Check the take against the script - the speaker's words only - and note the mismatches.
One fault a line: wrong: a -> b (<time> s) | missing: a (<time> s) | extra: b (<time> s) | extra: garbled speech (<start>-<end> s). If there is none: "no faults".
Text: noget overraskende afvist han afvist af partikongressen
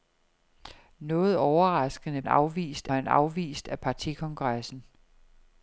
no faults